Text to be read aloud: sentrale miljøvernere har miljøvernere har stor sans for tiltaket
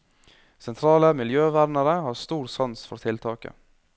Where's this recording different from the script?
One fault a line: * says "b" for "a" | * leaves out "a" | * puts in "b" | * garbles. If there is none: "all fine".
* leaves out "miljøvernere har"